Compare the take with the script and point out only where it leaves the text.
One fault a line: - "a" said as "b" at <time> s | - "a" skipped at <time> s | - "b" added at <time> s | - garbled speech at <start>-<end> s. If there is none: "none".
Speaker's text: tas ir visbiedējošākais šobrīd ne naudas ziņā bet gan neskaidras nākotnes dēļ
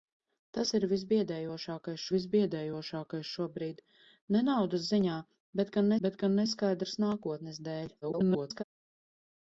- "visbiedējošākais" added at 2.1 s
- "bet gan" added at 6.1 s
- garbled speech at 8.0-8.6 s